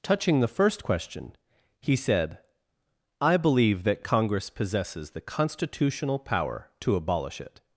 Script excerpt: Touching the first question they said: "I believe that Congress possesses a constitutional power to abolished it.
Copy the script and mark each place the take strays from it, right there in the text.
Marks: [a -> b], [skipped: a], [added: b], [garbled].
Touching the first question [they -> he] said: "I believe that Congress possesses [a -> the] constitutional power to [abolished -> abolish] it.